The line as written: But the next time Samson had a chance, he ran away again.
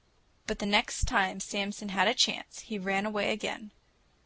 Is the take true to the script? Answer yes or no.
yes